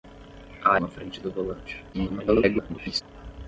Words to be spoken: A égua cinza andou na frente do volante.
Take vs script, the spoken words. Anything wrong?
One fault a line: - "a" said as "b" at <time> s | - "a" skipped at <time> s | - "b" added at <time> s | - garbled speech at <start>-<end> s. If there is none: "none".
- "égua cinza andou" skipped at 0.8 s
- garbled speech at 1.9-3.0 s